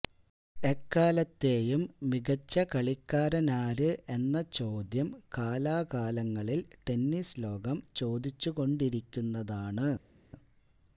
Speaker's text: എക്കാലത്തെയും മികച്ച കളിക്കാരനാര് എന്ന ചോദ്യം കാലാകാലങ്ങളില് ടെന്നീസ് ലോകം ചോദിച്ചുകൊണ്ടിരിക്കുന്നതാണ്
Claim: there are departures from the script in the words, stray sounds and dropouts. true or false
false